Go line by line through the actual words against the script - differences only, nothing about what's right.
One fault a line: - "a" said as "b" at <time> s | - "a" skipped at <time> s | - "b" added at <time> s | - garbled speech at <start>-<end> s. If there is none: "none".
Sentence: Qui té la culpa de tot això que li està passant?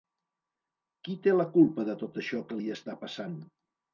none